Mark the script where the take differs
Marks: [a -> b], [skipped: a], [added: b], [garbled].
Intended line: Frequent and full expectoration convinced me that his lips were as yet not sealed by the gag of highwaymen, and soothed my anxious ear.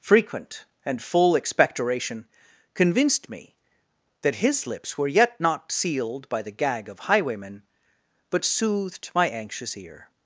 Frequent and full expectoration convinced me that his lips were [skipped: as] yet not sealed by the gag of highwaymen, [and -> but] soothed my anxious ear.